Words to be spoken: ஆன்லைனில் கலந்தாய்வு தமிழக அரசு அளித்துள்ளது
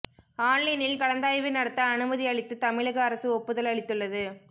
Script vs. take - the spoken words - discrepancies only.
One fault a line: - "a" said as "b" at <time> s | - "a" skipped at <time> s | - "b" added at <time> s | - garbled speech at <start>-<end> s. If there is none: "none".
- "நடத்த அனுமதி அளித்து" added at 1.5 s
- "ஒப்புதல்" added at 3.3 s